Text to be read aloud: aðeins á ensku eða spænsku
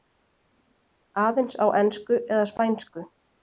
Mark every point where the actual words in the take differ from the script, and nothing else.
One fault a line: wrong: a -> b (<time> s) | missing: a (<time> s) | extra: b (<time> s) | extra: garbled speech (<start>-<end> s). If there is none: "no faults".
no faults